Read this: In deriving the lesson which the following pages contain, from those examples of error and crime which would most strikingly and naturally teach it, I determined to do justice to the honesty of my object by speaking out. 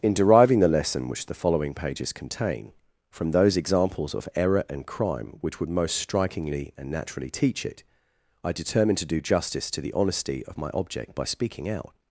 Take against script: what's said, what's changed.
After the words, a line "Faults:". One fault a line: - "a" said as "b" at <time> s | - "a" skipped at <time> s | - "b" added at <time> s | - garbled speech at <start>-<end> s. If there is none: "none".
In deriving the lesson which the following pages contain, from those examples of error and crime which would most strikingly and naturally teach it, I determined to do justice to the honesty of my object by speaking out.
Faults:
none